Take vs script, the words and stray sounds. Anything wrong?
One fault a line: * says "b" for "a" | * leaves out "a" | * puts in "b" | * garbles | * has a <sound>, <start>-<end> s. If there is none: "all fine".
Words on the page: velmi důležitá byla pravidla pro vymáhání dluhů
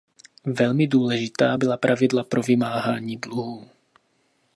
all fine